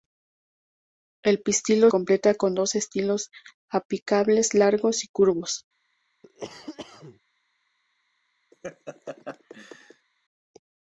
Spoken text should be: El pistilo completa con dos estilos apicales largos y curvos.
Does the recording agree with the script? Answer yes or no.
yes